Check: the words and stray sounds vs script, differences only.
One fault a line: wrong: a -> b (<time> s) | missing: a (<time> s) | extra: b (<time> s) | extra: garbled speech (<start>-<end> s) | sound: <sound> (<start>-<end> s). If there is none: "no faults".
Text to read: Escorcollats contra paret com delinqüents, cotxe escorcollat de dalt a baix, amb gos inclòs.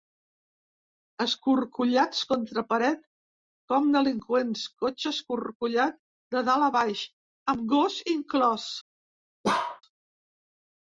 sound: bark (9.4-9.8 s)